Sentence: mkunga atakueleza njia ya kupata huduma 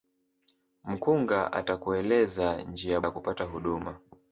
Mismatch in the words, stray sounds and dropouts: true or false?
false